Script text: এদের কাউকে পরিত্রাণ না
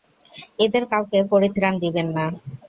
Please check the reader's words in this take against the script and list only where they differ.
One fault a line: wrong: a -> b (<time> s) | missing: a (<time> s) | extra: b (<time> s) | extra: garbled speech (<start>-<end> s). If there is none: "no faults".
extra: দিবেন (1.8 s)